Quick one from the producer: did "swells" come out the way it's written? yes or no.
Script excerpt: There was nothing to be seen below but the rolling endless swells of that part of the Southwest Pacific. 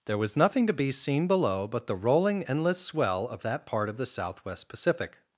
no